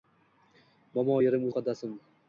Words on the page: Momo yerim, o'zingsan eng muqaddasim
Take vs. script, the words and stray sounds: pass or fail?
fail